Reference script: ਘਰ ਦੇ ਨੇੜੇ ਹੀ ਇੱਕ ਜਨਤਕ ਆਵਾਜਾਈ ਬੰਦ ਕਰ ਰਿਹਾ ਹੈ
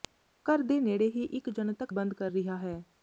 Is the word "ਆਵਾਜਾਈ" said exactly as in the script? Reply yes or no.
no